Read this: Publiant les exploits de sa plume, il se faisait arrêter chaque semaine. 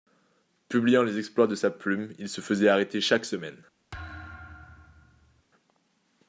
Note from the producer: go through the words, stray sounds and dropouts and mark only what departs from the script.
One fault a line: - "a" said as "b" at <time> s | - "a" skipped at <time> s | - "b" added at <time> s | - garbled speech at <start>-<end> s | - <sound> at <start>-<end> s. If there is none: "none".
- thud at 3.9-5.4 s